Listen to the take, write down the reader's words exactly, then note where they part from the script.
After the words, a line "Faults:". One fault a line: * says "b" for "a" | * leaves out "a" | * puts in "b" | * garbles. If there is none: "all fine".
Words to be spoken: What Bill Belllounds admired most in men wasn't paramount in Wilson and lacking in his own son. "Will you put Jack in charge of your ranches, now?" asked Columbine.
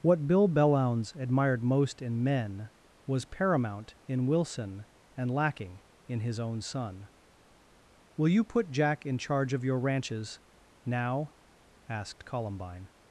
What Bill Belllounds admired most in men was paramount in Wilson and lacking in his own son. "Will you put Jack in charge of your ranches, now?" asked Columbine.
Faults:
* says "was" for "wasn't"